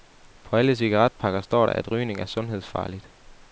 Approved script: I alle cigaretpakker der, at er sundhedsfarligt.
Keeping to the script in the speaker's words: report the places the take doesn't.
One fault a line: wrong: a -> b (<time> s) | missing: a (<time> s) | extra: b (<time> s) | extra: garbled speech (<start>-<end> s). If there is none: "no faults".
wrong: I -> På (0.4 s)
extra: står (1.4 s)
extra: rygning (1.9 s)